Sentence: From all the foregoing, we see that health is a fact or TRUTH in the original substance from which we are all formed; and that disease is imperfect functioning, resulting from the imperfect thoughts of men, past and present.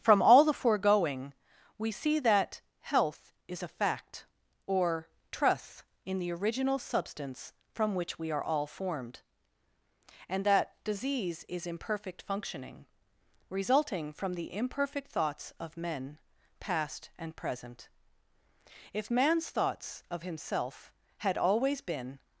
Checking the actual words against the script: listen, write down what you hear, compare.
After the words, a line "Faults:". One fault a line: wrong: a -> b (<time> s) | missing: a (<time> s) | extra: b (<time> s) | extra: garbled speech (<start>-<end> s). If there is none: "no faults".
From all the foregoing, we see that health is a fact or TRUTH in the original substance from which we are all formed; and that disease is imperfect functioning, resulting from the imperfect thoughts of men, past and present. If man's thoughts of himself had always been
Faults:
extra: If man's thoughts of himself had always been (18.9 s)